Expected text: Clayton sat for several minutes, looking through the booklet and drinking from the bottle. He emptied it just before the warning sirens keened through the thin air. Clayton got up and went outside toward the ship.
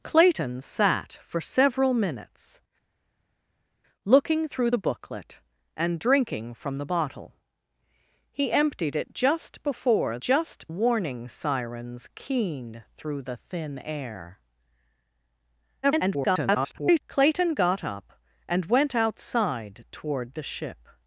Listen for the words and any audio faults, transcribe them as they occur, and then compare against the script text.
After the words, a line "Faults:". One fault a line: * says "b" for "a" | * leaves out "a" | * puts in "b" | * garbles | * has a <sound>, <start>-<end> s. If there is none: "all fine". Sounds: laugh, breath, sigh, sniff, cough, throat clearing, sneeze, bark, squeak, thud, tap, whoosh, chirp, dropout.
Clayton sat for several minutes, looking through the booklet and drinking from the bottle. He emptied it just before just warning sirens keened through the thin air. [garbled] Clayton got up and went outside toward the ship.
Faults:
* says "just" for "the"
* garbles